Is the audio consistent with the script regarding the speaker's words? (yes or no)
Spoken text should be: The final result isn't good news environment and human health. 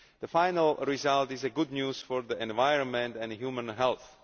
no